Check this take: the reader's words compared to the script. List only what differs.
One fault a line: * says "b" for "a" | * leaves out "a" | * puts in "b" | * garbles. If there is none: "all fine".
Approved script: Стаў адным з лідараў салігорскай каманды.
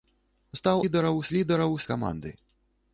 * says "лідараў" for "адным"
* leaves out "салігорскай"